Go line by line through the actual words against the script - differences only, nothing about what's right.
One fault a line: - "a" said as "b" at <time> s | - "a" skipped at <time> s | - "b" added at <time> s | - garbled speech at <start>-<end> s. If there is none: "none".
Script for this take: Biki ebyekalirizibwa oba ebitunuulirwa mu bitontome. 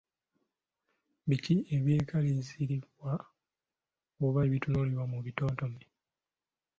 none